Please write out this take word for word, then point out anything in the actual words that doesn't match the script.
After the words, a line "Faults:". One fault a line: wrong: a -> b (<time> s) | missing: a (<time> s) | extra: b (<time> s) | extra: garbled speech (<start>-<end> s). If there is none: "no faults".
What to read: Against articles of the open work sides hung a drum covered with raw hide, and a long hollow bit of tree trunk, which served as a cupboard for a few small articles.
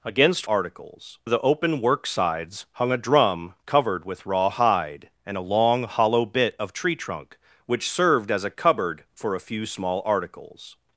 Against articles of the open work sides hung a drum covered with raw hide, and a long hollow bit of tree trunk, which served as a cupboard for a few small articles.
Faults:
no faults